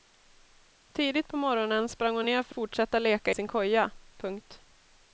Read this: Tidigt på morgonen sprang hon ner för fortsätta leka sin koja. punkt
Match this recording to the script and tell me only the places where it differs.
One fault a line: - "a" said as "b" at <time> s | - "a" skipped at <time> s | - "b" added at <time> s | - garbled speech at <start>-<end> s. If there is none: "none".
none